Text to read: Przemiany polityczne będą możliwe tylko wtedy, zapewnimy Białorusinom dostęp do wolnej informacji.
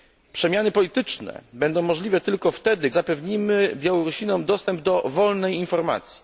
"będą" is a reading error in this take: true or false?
false